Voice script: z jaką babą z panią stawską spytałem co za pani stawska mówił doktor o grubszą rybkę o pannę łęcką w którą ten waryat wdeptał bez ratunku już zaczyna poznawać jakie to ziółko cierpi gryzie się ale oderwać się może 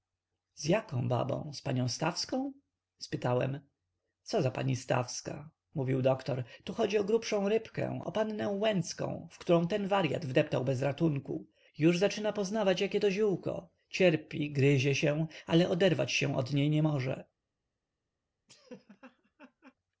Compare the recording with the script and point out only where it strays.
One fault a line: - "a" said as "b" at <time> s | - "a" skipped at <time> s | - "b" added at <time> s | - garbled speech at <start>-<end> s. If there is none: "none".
- "tu chodzi" added at 6.6 s
- "od niej nie" added at 16.4 s